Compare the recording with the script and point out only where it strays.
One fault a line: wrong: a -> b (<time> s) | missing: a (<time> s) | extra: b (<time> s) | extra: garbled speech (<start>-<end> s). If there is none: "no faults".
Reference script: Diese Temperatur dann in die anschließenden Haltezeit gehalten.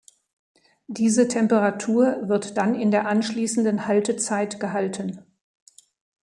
extra: wird (2.2 s)
wrong: die -> der (2.9 s)